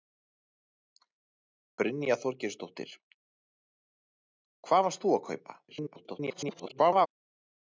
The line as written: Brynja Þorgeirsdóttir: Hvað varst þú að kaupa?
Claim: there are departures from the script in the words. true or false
true